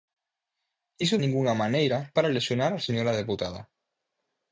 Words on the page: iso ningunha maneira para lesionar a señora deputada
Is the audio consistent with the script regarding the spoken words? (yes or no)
yes